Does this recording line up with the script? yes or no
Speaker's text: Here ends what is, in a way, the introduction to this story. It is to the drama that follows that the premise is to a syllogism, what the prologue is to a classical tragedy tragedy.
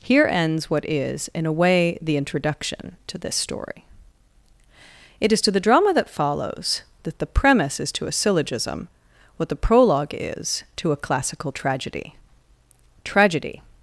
yes